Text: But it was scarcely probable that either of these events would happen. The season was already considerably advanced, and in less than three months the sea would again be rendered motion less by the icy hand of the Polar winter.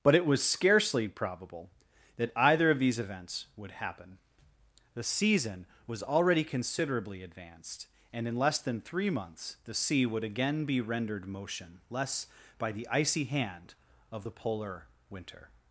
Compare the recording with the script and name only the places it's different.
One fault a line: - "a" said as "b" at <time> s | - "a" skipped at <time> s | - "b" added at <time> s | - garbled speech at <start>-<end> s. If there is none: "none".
none